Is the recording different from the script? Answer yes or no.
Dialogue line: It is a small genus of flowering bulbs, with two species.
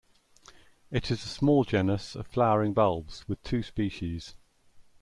no